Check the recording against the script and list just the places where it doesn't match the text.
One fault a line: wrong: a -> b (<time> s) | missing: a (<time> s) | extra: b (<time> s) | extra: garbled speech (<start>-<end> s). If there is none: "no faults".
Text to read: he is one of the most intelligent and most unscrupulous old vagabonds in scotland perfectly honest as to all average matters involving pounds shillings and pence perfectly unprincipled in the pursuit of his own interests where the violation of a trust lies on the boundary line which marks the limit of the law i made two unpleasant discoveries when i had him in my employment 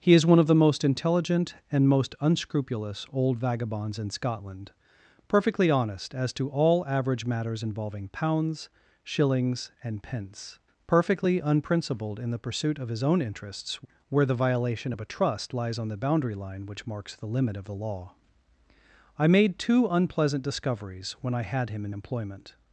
missing: my (21.9 s)